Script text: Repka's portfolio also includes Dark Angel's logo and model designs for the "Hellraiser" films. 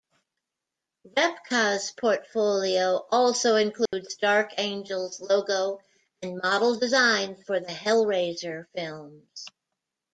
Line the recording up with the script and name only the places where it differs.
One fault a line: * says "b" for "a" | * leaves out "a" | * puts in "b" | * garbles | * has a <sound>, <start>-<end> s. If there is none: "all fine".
* has a dropout, 3.9-3.9 s